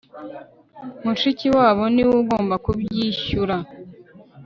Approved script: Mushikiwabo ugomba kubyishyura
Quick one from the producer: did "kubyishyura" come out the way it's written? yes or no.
yes